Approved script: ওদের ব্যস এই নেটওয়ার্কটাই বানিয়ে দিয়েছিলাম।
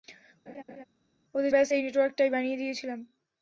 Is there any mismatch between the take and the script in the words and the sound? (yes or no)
yes